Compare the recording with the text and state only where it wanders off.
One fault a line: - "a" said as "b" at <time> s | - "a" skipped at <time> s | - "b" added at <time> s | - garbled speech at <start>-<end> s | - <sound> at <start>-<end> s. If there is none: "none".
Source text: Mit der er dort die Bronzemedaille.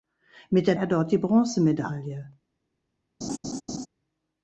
- laugh at 3.2-3.9 s